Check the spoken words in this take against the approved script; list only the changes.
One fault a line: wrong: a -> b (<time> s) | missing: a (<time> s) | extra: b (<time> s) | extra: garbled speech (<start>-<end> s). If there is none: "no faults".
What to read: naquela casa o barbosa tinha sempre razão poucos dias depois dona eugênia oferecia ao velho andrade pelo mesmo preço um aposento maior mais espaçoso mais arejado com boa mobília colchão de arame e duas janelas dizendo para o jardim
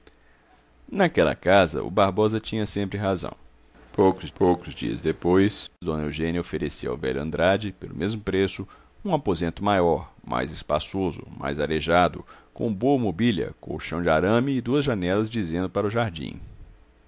extra: poucos (4.3 s)